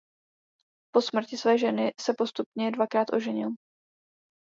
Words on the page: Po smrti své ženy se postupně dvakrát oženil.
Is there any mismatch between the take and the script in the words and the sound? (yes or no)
no